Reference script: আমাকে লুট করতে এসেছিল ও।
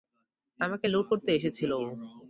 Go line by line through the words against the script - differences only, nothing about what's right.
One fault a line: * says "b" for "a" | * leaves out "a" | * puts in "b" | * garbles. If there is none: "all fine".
all fine